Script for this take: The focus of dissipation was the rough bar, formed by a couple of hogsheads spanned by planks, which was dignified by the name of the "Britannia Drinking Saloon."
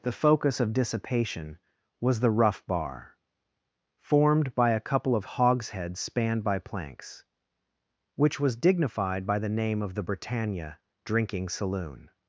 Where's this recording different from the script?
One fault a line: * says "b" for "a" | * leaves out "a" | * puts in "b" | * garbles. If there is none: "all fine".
all fine